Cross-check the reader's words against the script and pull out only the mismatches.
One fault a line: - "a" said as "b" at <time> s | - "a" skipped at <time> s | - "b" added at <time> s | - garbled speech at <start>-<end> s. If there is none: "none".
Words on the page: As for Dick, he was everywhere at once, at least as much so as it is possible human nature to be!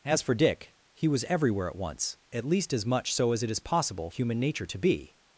none